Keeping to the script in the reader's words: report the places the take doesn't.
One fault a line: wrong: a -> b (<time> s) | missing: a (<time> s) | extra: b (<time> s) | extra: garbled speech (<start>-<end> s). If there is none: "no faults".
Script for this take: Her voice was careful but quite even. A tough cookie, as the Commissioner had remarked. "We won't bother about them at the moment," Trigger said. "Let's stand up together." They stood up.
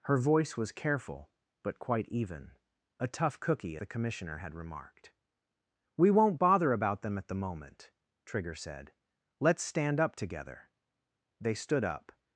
missing: as (3.8 s)